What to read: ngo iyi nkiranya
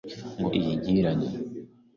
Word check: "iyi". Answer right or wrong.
right